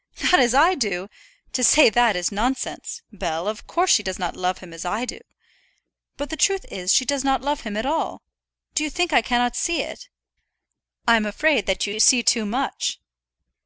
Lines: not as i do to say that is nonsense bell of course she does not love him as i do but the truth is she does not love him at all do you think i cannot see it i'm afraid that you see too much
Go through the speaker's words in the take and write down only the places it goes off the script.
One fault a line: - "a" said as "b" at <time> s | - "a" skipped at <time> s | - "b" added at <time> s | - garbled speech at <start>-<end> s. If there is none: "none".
- "you" added at 11.9 s